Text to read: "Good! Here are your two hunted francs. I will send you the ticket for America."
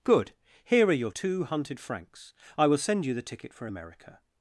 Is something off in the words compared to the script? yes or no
no